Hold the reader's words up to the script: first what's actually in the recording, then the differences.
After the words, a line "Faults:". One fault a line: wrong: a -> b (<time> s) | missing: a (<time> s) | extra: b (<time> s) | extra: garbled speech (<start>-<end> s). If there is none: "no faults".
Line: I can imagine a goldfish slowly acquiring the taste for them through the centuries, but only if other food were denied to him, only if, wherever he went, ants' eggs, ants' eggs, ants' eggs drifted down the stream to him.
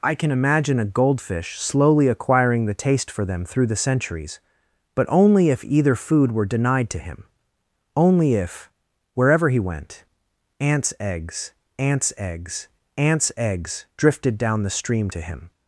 I can imagine a goldfish slowly acquiring the taste for them through the centuries, but only if either food were denied to him, only if, wherever he went, ants' eggs, ants' eggs, ants' eggs drifted down the stream to him.
Faults:
wrong: other -> either (5.6 s)